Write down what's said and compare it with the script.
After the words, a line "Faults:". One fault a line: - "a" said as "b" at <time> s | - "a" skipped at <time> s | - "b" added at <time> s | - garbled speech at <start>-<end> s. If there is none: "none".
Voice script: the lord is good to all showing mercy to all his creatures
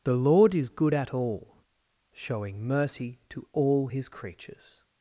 the lord is good at all showing mercy to all his creatures
Faults:
- "to" said as "at" at 0.9 s